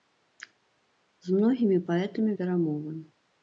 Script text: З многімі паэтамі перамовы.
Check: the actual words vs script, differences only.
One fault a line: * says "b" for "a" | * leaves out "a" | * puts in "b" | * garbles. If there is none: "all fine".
all fine